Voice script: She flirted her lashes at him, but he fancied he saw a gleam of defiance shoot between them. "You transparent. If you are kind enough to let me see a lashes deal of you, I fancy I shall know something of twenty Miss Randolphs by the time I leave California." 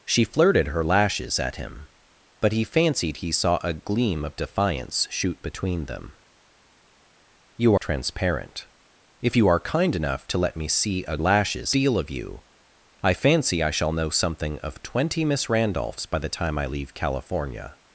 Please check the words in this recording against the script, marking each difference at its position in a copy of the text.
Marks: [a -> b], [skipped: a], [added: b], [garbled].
She flirted her lashes at him, but he fancied he saw a gleam of defiance shoot between them. "You transparent. If you are kind enough to let me see a lashes deal of you, I fancy I shall know something of twenty Miss Randolphs by the time I leave California."